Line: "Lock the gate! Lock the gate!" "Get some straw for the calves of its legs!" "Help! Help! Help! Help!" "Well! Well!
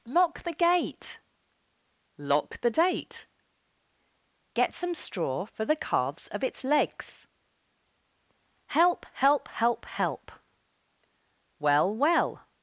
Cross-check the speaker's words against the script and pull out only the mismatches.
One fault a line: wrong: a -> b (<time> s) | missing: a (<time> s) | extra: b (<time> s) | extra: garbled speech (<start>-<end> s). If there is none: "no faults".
wrong: gate -> date (2.7 s)